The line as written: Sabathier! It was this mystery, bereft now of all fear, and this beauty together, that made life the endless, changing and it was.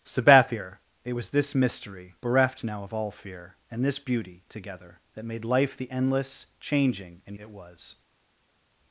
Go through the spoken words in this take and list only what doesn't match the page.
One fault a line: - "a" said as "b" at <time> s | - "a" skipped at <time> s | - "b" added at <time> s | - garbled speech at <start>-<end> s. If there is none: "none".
none